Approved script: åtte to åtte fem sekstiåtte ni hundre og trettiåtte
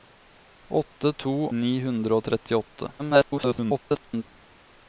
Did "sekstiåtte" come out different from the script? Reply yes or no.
yes